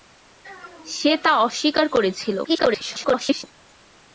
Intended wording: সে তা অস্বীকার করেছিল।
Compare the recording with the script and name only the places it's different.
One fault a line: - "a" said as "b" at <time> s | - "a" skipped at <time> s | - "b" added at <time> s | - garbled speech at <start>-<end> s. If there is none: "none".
- garbled speech at 2.4-3.4 s